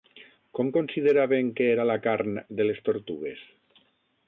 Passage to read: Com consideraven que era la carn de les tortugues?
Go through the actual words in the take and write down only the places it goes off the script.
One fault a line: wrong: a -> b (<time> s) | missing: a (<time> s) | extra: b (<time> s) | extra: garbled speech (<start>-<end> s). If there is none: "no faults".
no faults